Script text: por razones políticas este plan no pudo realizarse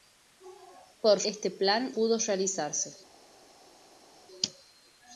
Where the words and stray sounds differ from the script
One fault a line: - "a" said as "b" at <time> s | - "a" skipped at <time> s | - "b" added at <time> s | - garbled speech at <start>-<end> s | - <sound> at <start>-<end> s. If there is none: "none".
- "razones políticas" skipped at 1.2 s
- "no" skipped at 1.9 s